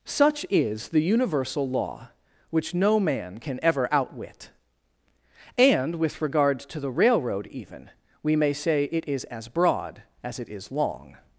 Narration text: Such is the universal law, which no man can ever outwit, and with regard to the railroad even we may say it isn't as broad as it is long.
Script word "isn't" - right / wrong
wrong